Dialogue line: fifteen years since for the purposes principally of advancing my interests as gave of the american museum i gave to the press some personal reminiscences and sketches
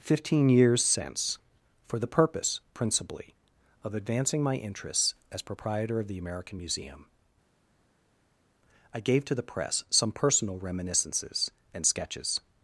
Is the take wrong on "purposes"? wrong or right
wrong